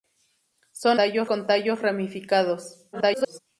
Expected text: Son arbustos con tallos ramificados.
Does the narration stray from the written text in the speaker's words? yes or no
yes